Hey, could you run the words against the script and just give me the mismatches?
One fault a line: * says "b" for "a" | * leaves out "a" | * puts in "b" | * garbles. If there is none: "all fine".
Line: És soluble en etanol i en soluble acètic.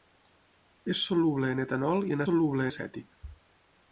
all fine